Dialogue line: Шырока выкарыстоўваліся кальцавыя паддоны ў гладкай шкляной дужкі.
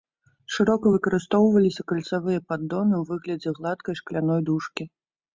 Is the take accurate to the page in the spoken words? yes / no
no